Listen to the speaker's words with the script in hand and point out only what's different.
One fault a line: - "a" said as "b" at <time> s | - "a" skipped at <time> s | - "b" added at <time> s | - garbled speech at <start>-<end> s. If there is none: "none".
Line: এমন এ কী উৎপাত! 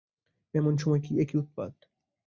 - "সময়" added at 0.8 s